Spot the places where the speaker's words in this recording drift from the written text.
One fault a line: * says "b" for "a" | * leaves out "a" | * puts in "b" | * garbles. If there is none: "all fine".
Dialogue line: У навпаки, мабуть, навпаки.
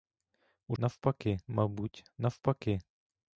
all fine